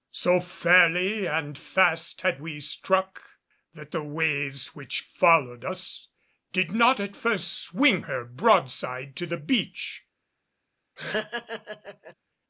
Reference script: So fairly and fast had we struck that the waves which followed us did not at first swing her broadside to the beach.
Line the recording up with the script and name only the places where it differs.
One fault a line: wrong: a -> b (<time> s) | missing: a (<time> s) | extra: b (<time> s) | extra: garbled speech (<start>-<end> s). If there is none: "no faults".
no faults